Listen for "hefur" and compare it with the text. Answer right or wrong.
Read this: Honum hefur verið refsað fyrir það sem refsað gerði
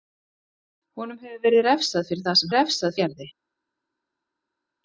right